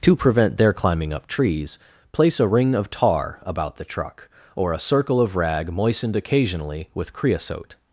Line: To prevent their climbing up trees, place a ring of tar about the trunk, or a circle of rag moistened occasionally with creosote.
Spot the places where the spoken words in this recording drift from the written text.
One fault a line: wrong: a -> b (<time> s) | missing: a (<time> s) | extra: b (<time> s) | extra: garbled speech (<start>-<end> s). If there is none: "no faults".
wrong: trunk -> truck (3.8 s)